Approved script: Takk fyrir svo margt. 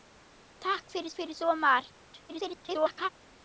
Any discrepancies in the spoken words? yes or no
yes